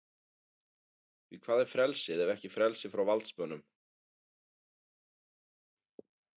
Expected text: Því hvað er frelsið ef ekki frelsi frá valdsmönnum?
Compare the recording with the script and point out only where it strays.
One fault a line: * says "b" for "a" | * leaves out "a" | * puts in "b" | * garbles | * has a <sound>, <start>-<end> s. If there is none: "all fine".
all fine